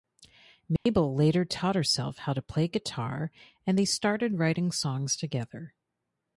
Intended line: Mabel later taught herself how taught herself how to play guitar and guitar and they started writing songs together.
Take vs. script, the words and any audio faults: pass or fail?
fail